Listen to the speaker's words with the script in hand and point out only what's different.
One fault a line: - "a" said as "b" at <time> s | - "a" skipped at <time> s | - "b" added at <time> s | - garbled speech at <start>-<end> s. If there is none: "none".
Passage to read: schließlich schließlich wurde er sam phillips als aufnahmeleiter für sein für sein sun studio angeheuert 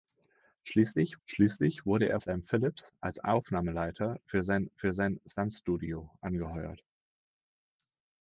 none